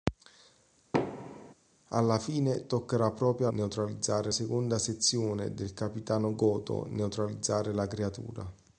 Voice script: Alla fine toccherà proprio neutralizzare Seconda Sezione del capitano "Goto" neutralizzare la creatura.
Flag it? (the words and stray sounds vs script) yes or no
yes